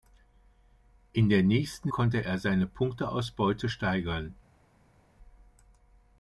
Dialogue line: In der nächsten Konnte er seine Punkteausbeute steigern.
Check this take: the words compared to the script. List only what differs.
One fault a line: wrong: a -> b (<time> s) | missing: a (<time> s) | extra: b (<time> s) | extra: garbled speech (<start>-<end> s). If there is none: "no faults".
no faults